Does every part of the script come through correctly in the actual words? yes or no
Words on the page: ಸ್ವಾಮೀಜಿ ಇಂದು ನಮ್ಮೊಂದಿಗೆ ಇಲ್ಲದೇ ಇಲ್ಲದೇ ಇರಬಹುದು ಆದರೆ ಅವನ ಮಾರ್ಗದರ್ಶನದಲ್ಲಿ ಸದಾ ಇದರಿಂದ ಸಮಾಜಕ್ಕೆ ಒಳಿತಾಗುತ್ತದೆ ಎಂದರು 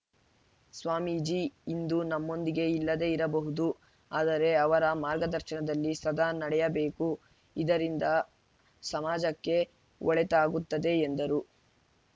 no